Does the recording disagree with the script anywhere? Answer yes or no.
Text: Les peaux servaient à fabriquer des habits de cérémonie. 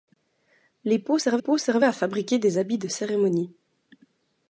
yes